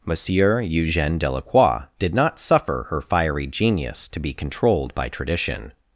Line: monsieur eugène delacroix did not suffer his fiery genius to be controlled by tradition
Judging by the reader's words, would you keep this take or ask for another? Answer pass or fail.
fail